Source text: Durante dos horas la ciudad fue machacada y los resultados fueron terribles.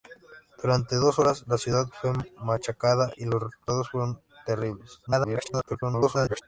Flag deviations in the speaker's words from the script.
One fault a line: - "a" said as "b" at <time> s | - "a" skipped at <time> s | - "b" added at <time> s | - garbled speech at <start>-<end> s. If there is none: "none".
- garbled speech at 5.1-6.4 s